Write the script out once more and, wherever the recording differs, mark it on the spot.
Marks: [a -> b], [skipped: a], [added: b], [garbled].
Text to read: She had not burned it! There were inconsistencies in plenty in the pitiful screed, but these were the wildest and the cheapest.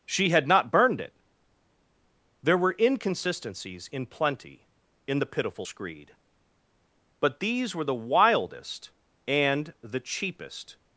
She had not burned it! There were inconsistencies in plenty in the pitiful screed, but these were the wildest and the cheapest.